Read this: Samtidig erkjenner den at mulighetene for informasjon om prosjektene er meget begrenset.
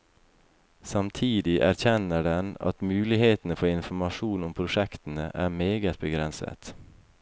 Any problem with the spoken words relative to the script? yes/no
no